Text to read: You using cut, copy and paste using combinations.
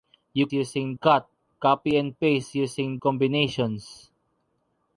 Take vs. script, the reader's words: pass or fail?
pass